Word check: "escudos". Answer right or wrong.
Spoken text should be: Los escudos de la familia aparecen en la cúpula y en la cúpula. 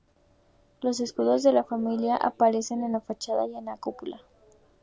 right